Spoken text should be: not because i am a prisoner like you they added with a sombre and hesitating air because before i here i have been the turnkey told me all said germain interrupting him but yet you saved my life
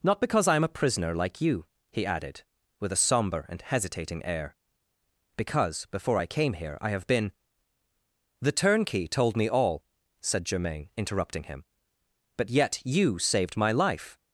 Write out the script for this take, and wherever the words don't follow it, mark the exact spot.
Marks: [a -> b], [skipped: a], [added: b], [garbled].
not because i am a prisoner like you [they -> he] added with a sombre and hesitating air because before i [added: came] here i have been the turnkey told me all said germain interrupting him but yet you saved my life